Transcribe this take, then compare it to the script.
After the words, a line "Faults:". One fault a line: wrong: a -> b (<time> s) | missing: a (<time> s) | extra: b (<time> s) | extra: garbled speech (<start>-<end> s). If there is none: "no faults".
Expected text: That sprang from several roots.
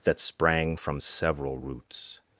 That sprang from several roots.
Faults:
no faults